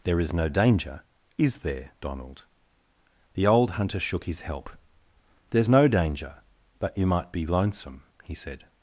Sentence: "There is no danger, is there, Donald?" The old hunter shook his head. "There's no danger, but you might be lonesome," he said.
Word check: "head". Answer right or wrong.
wrong